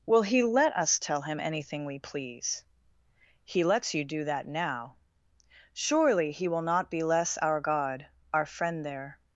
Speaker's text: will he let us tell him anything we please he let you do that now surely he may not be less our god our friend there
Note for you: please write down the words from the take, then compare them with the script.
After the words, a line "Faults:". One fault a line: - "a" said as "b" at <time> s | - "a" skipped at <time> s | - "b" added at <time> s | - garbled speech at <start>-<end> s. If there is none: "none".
will he let us tell him anything we please he lets you do that now surely he will not be less our god our friend there
Faults:
- "let" said as "lets" at 3.6 s
- "may" said as "will" at 6.5 s